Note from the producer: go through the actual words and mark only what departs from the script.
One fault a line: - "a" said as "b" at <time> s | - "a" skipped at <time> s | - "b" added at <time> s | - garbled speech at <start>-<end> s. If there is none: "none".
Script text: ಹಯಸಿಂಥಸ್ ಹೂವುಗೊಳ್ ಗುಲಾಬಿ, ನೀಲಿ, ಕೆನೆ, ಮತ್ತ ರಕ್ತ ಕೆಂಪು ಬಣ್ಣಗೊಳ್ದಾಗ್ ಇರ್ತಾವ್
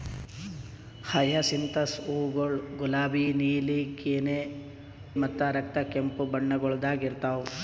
none